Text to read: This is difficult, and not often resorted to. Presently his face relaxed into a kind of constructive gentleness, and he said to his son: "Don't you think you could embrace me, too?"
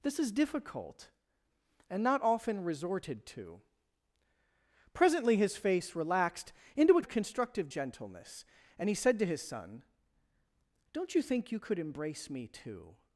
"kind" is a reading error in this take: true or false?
true